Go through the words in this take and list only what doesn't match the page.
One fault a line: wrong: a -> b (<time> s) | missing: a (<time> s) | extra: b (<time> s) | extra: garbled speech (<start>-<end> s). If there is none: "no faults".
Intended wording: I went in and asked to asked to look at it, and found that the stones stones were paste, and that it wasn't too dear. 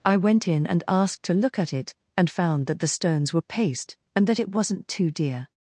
missing: asked to (1.3 s)
missing: stones (3.3 s)